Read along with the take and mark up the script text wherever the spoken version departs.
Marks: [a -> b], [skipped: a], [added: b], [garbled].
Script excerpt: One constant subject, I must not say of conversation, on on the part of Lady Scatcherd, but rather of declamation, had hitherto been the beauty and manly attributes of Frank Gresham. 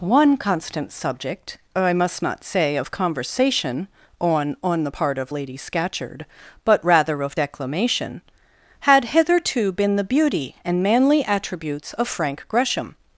One constant subject, I must not say of conversation, on on the part of Lady Scatcherd, but rather of declamation, had hitherto been the beauty and manly attributes of Frank Gresham.